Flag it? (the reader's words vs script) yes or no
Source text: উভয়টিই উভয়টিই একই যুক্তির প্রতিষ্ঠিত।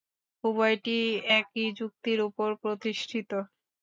yes